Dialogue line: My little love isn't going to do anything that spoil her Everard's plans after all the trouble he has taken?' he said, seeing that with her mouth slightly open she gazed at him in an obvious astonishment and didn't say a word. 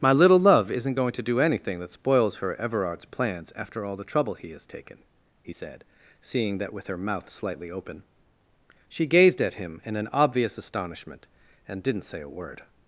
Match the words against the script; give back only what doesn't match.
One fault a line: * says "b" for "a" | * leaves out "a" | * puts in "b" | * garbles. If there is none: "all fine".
* says "spoils" for "spoil"